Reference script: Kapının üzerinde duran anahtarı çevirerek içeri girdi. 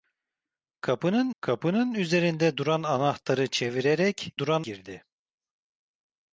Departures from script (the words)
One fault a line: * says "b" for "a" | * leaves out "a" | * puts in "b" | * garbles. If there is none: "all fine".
* puts in "kapının"
* says "duran" for "içeri"